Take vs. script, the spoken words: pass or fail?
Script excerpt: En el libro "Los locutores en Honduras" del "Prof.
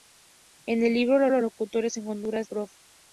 fail